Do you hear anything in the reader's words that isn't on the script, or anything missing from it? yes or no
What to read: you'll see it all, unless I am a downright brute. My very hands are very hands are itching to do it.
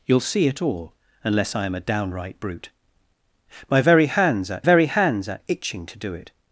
no